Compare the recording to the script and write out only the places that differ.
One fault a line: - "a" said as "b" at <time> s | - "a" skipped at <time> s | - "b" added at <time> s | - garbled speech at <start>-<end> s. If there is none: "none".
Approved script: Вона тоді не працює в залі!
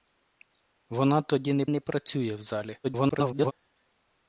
- "не" added at 1.7 s
- garbled speech at 2.8-3.5 s